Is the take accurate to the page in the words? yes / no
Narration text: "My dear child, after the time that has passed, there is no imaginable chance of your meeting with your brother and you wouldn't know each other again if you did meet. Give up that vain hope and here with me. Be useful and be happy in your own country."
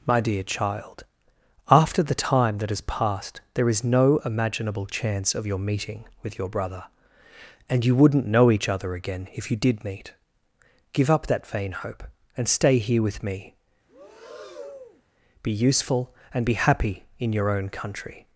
no